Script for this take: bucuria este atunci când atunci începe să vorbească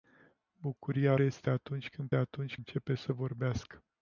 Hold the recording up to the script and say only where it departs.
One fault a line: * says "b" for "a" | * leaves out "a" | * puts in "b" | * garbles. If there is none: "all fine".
all fine